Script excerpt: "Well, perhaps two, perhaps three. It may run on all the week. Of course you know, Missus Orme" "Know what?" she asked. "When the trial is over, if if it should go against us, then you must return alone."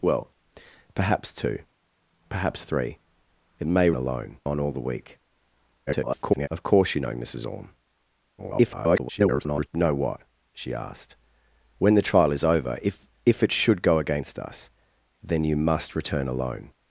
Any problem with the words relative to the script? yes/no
yes